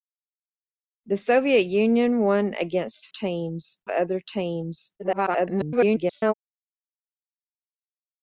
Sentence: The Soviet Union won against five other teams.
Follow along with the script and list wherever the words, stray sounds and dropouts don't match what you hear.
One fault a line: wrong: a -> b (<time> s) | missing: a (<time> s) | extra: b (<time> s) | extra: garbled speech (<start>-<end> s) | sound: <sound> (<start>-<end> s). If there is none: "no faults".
wrong: five -> teams (3.1 s)
extra: garbled speech (5.0-6.3 s)